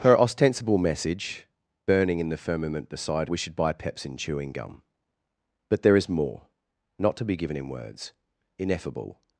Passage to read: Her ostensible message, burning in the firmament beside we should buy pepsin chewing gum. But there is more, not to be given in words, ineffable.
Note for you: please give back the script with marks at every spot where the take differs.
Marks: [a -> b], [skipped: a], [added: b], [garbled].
Her ostensible message, burning in the firmament beside we should buy pepsin chewing gum. But there is more, not to be given in words, ineffable.